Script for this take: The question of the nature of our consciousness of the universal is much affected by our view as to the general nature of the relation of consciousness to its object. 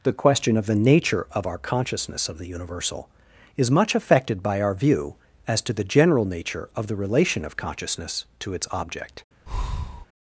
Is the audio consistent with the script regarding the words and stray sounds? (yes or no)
no